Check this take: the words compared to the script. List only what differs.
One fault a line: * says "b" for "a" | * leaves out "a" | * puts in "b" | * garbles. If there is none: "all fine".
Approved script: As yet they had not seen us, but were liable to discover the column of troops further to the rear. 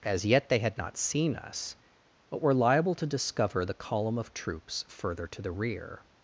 all fine